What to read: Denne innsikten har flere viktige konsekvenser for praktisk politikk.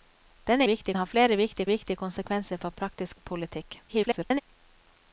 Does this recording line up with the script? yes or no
no